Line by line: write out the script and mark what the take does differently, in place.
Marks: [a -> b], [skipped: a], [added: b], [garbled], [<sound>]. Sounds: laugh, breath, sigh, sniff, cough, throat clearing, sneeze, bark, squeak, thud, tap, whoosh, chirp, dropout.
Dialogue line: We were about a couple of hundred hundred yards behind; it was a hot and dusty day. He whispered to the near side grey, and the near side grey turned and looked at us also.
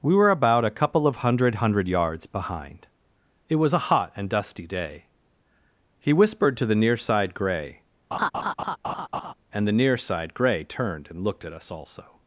We were about a couple of hundred hundred yards behind; it was a hot and dusty day. He whispered to the near side grey, [laugh] and the near side grey turned and looked at us also.